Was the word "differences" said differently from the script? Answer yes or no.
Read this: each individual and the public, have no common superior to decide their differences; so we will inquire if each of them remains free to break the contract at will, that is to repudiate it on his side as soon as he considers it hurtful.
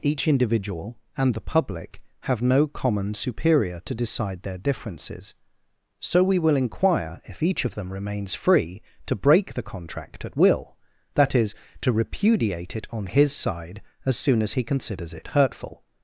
no